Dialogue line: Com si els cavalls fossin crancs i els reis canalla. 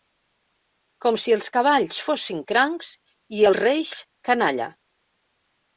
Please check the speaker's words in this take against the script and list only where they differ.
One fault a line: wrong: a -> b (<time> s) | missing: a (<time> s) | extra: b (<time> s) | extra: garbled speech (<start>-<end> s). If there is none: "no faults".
no faults